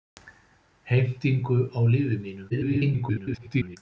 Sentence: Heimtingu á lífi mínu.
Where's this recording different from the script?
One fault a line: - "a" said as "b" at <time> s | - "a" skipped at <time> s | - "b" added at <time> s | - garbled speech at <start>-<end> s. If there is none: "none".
- garbled speech at 2.5-3.8 s